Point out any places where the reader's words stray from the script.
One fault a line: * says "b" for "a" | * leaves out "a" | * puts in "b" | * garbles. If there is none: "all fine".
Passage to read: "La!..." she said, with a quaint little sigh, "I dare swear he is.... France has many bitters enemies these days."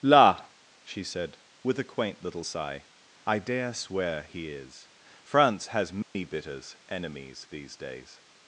all fine